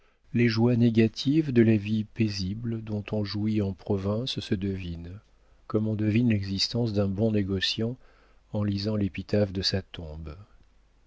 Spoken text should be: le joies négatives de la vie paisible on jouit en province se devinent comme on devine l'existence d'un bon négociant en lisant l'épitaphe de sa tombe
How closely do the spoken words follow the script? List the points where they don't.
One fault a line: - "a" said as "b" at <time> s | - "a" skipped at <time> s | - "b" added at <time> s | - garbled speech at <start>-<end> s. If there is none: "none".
- "le" said as "les" at 0.3 s
- "dont" added at 2.8 s